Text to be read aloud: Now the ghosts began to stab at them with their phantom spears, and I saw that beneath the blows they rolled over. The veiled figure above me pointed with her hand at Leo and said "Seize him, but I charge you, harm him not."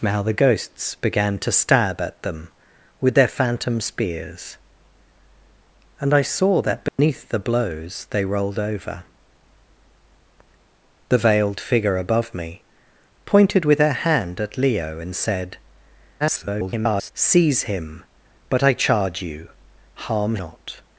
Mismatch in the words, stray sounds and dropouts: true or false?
true